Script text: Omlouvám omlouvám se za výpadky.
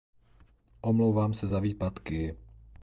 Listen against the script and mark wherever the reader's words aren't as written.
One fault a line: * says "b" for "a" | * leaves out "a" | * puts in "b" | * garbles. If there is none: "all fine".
* leaves out "omlouvám"